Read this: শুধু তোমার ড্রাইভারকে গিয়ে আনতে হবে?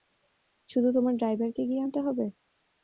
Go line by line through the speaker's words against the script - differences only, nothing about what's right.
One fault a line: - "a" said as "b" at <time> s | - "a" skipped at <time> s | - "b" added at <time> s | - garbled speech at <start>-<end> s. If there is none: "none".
none